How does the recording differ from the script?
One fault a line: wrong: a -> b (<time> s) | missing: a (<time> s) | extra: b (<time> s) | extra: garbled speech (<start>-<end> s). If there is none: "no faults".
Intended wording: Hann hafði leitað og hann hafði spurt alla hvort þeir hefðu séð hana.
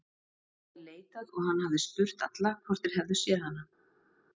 no faults